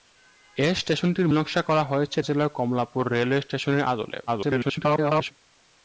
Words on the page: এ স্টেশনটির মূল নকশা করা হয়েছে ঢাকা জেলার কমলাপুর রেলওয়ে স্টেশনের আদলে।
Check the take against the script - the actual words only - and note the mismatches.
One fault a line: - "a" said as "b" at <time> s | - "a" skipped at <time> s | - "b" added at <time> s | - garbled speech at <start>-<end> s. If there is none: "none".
- "মূল" skipped at 1.3 s
- "ঢাকা" skipped at 2.2 s
- garbled speech at 4.3-5.3 s